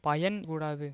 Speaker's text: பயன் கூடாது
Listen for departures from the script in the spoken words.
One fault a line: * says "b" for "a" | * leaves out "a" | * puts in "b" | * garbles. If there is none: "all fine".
all fine